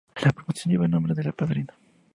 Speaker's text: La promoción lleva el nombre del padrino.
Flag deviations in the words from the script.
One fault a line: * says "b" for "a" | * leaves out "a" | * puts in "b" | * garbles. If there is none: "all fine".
all fine